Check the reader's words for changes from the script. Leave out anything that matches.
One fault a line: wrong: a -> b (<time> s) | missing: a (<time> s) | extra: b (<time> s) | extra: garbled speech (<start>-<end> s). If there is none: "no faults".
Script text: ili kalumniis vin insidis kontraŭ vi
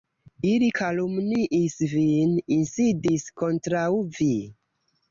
no faults